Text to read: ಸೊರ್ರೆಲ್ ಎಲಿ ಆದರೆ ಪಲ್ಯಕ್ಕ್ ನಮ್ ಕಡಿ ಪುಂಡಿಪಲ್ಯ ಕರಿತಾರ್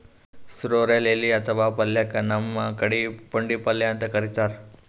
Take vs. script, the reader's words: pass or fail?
fail